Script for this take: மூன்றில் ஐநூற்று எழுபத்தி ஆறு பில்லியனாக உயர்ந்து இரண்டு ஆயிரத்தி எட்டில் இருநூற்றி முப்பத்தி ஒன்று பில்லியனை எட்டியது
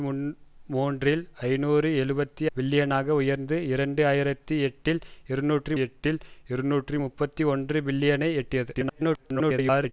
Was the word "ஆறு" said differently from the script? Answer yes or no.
yes